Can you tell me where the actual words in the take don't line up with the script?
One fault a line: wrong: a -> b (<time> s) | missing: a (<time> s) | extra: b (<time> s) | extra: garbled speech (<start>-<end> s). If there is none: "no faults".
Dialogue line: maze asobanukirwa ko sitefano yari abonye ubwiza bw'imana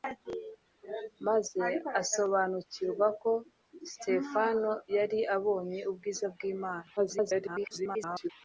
extra: garbled speech (7.0-8.3 s)